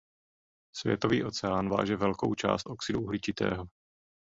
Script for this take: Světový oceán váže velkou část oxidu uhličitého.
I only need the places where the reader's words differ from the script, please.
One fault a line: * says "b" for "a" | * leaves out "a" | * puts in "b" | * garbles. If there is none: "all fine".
all fine